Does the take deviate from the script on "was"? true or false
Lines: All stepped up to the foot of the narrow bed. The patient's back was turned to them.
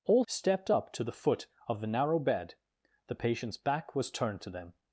false